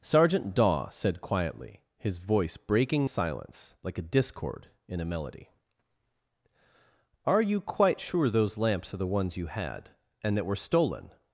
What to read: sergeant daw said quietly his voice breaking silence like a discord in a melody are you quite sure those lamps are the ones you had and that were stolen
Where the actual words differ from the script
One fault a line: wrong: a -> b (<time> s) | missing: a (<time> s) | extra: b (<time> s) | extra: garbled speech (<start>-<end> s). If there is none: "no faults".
no faults